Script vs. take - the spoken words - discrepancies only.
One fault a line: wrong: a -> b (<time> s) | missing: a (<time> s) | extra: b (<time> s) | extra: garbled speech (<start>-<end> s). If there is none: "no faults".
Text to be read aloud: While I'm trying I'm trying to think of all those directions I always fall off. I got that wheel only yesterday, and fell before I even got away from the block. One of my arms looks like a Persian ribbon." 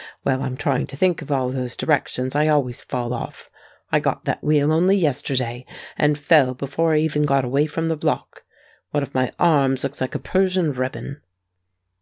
missing: I'm trying (0.9 s)